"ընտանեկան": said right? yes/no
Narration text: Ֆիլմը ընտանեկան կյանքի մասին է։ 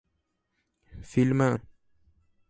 no